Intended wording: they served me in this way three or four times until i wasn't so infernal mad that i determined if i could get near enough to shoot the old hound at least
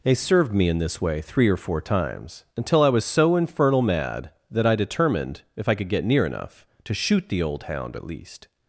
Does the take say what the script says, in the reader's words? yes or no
no